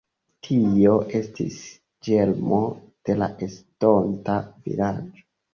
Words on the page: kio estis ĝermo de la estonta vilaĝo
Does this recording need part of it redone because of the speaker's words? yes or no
yes